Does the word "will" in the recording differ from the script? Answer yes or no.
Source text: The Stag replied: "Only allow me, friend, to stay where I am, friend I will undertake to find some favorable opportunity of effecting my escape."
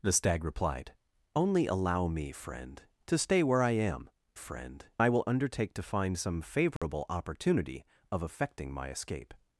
no